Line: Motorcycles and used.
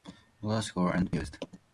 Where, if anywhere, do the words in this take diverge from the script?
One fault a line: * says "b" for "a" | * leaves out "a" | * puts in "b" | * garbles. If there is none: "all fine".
all fine